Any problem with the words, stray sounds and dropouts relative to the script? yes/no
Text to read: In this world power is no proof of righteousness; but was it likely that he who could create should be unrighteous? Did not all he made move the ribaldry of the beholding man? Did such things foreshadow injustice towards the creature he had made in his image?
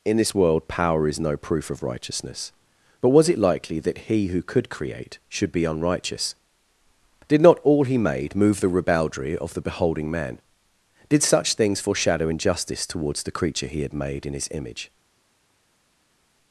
no